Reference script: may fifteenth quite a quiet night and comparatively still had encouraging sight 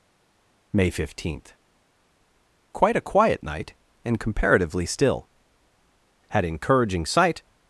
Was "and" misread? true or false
false